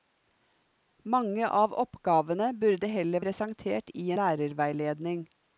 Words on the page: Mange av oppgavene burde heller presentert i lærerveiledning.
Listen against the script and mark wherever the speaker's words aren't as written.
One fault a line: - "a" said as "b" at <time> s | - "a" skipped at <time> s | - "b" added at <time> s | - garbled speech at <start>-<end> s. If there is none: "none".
none